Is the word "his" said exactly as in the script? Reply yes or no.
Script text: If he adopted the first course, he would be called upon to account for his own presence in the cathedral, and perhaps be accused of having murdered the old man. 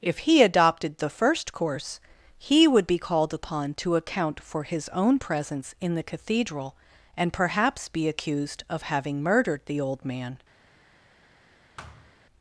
yes